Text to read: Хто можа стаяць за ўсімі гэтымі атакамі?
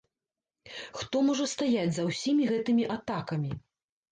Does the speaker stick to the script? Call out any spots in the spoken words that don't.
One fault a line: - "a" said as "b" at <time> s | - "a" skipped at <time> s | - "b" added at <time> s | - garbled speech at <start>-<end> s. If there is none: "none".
none